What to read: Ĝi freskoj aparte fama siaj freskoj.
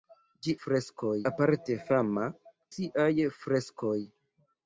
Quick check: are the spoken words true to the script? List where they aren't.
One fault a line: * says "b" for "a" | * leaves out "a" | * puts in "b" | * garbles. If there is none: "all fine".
all fine